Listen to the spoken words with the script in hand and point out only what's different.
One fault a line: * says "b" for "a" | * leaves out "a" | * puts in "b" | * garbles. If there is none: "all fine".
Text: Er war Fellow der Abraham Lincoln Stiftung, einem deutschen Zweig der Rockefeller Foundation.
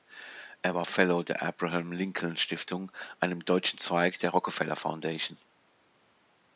all fine